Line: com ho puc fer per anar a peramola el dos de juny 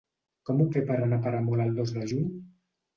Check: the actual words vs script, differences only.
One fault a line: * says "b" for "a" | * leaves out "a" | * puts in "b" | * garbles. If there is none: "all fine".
* leaves out "puc"